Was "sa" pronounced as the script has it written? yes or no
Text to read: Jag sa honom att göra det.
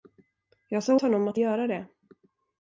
yes